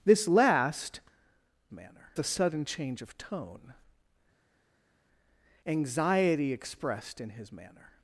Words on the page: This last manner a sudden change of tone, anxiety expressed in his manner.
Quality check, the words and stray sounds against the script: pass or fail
pass